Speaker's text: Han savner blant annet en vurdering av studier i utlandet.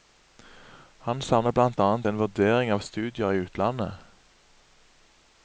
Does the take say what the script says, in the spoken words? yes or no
yes